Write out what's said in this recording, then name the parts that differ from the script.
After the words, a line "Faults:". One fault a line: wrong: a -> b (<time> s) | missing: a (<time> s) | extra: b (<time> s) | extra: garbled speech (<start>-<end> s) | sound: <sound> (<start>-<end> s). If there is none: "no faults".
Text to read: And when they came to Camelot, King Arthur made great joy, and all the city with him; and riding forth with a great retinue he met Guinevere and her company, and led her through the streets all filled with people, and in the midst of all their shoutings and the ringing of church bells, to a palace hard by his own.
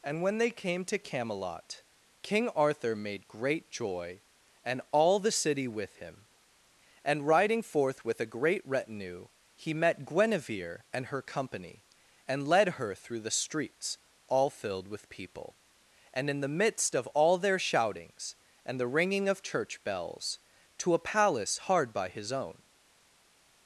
And when they came to Camelot, King Arthur made great joy, and all the city with him; and riding forth with a great retinue he met Guinevere and her company, and led her through the streets all filled with people, and in the midst of all their shoutings and the ringing of church bells, to a palace hard by his own.
Faults:
no faults